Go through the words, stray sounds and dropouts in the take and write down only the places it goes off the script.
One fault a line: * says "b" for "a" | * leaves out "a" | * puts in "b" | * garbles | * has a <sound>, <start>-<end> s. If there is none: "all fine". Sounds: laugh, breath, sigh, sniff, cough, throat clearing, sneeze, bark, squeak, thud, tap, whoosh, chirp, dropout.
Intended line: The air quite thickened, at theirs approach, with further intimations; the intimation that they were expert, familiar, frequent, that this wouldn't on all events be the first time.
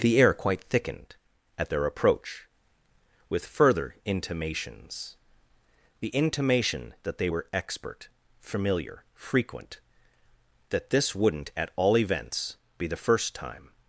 * says "their" for "theirs"
* says "at" for "on"